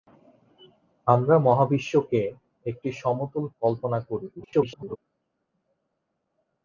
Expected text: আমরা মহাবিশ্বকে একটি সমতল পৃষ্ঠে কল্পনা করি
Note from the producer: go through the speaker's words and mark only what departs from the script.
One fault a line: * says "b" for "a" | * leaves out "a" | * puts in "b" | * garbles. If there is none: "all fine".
* leaves out "পৃষ্ঠে"
* garbles